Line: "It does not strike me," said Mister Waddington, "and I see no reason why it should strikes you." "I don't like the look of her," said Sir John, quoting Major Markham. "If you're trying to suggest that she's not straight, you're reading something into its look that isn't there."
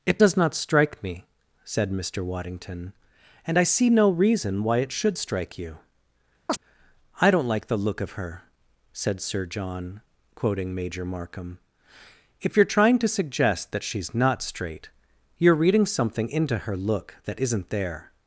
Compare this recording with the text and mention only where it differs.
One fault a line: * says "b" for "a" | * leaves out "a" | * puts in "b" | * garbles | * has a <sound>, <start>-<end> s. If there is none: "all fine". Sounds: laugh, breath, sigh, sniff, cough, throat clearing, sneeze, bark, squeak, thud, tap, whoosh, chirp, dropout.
* says "strike" for "strikes"
* has a chirp, 6.5-6.6 s
* says "her" for "its"